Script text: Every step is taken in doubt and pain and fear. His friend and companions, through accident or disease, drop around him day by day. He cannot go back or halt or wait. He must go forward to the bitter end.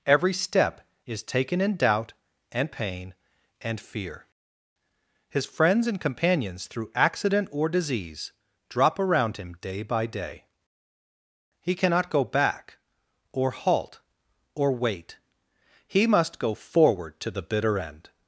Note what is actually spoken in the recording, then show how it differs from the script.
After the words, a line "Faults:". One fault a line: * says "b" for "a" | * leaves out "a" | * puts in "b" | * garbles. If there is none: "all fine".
Every step is taken in doubt and pain and fear. His friends and companions, through accident or disease, drop around him day by day. He cannot go back or halt or wait. He must go forward to the bitter end.
Faults:
* says "friends" for "friend"